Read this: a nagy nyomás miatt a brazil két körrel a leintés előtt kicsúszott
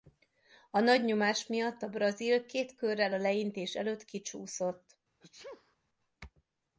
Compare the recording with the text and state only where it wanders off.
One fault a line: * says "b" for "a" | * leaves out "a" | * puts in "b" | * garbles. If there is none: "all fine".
all fine